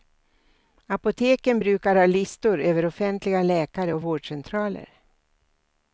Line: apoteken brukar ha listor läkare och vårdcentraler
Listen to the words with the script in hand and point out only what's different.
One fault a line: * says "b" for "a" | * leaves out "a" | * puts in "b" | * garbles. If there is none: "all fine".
* puts in "över offentliga"